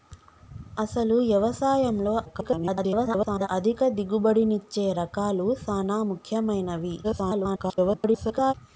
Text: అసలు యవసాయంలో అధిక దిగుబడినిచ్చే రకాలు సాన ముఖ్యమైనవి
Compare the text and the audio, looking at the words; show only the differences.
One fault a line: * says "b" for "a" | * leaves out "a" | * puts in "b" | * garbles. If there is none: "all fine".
* garbles
* garbles